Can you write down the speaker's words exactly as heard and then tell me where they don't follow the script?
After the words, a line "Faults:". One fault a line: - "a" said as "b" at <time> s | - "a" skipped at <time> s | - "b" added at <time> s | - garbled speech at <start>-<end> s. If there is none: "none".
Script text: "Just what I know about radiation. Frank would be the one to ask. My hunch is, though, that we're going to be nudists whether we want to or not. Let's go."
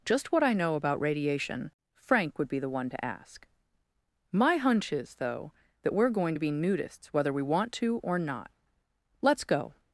"Just what I know about radiation. Frank would be the one to ask. My hunch is, though, that we're going to be nudists whether we want to or not. Let's go."
Faults:
none